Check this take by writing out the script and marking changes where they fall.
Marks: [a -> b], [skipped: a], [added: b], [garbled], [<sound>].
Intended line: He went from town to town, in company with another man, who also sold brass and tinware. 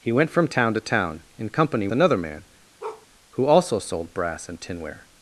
He went from town to town, in company [skipped: with] another man, [bark] who also sold brass and tinware.